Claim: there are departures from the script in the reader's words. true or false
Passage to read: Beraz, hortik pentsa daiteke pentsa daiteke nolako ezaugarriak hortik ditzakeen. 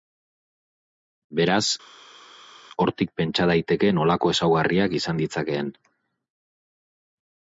true